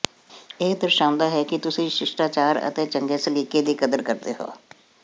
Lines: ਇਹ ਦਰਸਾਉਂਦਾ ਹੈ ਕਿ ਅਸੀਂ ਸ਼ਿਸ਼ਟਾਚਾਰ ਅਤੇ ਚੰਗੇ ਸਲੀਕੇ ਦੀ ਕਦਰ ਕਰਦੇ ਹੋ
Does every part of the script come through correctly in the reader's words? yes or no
no